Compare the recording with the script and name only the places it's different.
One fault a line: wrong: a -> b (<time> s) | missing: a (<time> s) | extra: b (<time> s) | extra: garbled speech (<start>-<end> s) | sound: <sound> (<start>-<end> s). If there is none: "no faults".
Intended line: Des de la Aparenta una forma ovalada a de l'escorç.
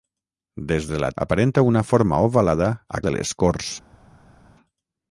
no faults